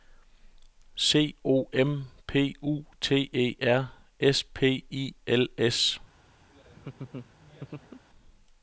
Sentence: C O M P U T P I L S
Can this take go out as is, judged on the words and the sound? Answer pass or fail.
fail